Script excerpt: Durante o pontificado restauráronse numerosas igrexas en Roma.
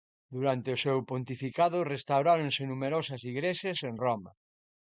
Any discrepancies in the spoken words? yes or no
yes